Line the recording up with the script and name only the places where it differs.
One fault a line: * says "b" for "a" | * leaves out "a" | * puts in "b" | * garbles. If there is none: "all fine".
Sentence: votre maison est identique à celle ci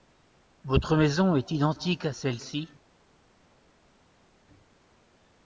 all fine